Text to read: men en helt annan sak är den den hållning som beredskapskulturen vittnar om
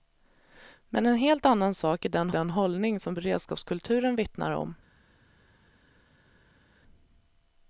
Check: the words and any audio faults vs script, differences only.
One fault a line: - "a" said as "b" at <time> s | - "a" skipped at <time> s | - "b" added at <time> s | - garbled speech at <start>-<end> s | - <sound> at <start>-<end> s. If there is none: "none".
none